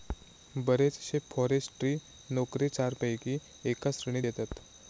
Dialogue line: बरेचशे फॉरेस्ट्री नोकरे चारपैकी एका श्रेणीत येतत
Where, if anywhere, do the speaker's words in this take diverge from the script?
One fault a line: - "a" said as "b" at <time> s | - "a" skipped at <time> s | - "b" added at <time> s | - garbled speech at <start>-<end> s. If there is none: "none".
none